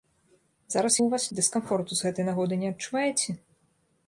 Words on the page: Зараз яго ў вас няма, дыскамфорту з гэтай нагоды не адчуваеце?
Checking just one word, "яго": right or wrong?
wrong